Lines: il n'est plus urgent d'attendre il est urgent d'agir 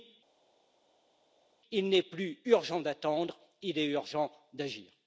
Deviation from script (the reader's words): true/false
false